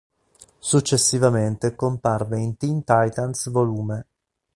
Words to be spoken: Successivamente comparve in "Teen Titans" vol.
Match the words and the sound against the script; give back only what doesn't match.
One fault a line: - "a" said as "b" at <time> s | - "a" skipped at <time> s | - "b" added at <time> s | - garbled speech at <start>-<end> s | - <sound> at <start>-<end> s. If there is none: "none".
none